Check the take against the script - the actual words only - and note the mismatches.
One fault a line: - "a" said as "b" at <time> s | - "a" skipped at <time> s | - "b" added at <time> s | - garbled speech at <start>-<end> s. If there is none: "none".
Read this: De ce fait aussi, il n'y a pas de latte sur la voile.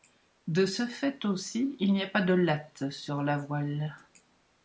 none